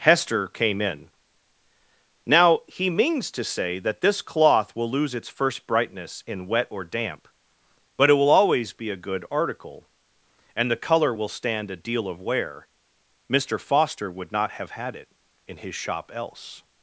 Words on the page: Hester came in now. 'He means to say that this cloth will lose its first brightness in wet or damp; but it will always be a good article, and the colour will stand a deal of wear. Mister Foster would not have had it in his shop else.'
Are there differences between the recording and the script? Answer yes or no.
no